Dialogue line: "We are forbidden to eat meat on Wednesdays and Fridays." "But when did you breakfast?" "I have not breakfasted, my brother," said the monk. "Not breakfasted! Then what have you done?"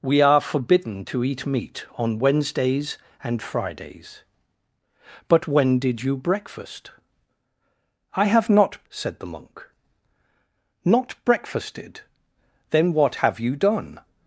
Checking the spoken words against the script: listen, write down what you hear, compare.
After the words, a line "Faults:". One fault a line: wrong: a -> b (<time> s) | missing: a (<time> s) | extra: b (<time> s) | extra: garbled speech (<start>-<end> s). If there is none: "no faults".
"We are forbidden to eat meat on Wednesdays and Fridays." "But when did you breakfast?" "I have not," said the monk. "Not breakfasted! Then what have you done?"
Faults:
missing: breakfasted my brother (8.8 s)